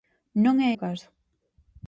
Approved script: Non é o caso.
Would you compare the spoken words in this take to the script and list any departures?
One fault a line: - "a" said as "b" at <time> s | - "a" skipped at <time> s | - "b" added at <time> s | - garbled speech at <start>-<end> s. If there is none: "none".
none